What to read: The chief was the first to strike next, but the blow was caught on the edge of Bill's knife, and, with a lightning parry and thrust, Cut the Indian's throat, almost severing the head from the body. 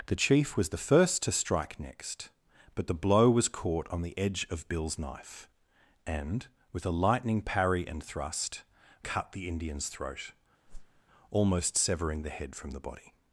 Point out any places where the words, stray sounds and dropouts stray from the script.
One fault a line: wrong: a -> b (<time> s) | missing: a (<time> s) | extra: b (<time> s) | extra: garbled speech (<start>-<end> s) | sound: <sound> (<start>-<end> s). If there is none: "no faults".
sound: whoosh (10.7-11.0 s)